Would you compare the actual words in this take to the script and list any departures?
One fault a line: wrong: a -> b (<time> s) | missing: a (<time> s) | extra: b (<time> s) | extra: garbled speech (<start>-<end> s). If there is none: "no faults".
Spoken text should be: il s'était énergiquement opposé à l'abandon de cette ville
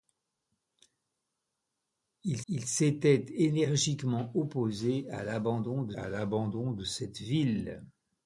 extra: il (2.5 s)
extra: à l'abandon de (5.9 s)